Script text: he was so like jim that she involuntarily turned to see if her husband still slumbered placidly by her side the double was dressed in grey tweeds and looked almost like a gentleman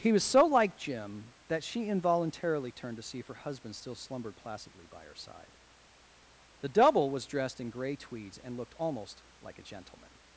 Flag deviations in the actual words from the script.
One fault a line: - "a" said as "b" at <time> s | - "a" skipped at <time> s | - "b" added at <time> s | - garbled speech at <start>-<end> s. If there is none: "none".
none